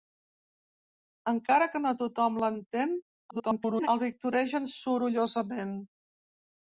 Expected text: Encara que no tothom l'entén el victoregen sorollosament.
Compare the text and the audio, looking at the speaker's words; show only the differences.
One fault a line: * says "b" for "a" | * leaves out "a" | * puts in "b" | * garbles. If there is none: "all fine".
* garbles